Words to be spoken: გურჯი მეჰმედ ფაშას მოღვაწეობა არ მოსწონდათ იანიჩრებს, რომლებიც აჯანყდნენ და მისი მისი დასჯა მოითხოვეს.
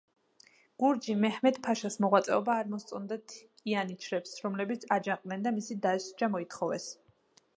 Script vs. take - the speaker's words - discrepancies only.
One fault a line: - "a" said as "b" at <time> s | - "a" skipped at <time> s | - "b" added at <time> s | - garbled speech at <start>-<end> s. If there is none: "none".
- "მისი" skipped at 5.8 s